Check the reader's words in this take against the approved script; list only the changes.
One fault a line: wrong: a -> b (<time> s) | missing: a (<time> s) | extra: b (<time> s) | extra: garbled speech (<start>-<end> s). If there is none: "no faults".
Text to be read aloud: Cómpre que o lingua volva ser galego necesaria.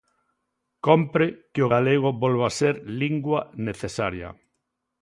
wrong: lingua -> galego (1.7 s)
wrong: galego -> lingua (3.0 s)